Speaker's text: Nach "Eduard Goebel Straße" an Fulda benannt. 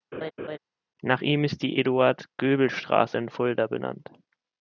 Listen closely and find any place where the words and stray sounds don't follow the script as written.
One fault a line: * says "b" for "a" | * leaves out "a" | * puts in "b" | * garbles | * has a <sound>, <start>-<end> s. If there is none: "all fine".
* has a laugh, 0.1-0.6 s
* puts in "ihm ist die"
* says "in" for "an"